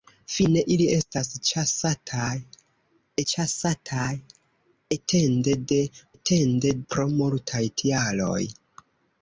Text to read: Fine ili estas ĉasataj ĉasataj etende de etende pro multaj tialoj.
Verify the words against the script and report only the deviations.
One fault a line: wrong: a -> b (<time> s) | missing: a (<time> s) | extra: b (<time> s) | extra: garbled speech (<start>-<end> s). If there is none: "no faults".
no faults